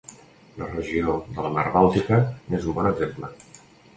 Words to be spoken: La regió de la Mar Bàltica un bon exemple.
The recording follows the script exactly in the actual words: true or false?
false